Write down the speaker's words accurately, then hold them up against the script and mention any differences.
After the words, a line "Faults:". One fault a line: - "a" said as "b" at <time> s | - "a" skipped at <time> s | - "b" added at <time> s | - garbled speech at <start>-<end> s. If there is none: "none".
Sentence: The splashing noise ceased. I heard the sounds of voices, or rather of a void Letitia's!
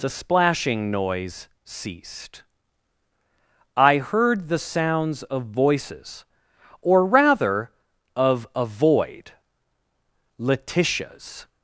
The splashing noise ceased. I heard the sounds of voices, or rather of a void Letitia's!
Faults:
none